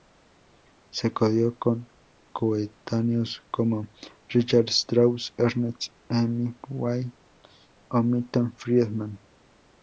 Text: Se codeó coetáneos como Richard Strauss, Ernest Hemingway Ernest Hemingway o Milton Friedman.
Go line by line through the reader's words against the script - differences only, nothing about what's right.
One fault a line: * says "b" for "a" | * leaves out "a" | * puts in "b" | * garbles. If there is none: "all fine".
* puts in "con"
* leaves out "Ernest Hemingway"